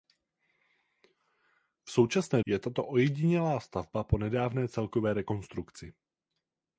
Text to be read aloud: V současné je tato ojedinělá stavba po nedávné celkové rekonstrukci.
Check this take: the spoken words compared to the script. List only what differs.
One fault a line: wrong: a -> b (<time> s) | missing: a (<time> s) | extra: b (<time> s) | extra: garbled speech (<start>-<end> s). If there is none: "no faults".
no faults